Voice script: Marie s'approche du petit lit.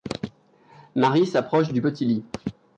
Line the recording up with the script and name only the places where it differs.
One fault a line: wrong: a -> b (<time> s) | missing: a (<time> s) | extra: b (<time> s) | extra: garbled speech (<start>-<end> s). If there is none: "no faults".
no faults